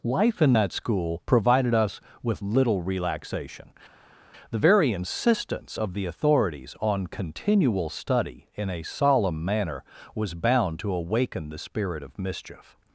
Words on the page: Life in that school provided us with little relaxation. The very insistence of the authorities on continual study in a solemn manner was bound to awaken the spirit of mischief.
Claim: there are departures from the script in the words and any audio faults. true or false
false